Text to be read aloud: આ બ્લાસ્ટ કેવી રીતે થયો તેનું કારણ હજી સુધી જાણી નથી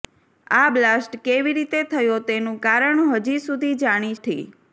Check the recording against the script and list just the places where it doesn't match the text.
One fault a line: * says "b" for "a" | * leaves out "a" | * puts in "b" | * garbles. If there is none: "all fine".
all fine